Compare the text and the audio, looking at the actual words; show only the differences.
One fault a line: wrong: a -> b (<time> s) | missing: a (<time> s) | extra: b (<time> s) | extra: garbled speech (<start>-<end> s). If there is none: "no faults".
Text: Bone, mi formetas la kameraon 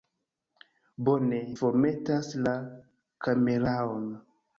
missing: mi (1.4 s)